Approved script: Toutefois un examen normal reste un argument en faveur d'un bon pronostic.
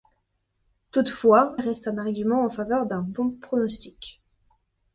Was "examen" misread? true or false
true